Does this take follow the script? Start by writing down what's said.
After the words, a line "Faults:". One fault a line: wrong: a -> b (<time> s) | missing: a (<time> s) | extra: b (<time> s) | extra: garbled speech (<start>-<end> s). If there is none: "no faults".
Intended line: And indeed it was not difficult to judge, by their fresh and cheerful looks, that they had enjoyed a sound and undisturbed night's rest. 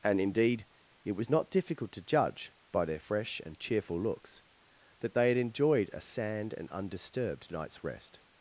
And indeed it was not difficult to judge, by their fresh and cheerful looks, that they had enjoyed a sand and undisturbed night's rest.
Faults:
wrong: sound -> sand (6.0 s)